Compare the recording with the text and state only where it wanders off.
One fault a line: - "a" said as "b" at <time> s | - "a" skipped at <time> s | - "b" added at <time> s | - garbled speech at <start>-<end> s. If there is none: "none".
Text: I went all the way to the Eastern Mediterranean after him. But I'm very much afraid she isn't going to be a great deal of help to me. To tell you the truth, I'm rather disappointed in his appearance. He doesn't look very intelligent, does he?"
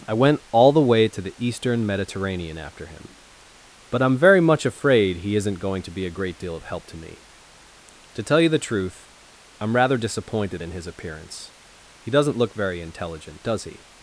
- "she" said as "he" at 5.2 s